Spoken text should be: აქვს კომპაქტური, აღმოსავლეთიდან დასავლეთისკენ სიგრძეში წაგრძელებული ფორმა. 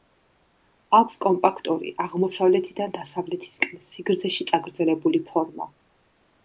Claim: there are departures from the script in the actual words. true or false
false